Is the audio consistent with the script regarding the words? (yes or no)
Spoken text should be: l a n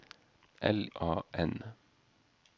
yes